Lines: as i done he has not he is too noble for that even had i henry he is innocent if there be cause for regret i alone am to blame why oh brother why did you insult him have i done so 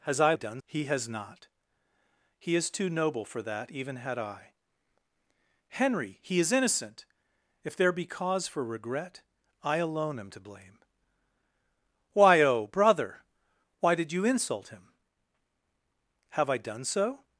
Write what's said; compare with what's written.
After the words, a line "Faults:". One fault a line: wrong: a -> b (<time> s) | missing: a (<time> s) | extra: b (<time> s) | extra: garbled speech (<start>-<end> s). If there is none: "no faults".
as i done he has not he is too noble for that even had i henry he is innocent if there be cause for regret i alone am to blame why oh brother why did you insult him have i done so
Faults:
no faults